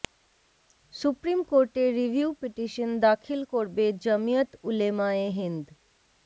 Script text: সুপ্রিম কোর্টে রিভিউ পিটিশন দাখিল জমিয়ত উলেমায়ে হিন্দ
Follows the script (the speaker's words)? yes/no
no